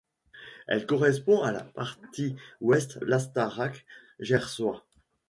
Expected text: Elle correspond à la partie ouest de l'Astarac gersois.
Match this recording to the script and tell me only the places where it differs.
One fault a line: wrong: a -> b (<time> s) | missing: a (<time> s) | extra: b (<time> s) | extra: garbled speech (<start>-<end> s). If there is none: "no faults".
missing: de (3.0 s)